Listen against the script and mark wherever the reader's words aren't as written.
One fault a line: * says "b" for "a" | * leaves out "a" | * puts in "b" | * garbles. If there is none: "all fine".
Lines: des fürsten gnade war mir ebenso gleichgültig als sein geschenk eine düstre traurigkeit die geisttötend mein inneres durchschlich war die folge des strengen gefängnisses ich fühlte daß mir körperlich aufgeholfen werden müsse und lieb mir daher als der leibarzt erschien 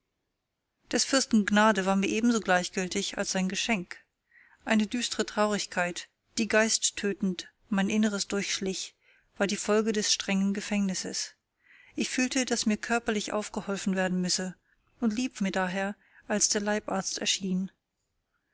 all fine